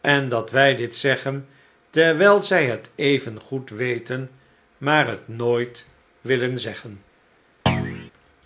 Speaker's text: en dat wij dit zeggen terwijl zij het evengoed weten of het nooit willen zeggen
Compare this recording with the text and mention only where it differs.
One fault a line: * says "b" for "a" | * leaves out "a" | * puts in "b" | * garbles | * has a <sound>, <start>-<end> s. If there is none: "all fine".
* says "maar" for "of"
* has a thud, 7.7-8.1 s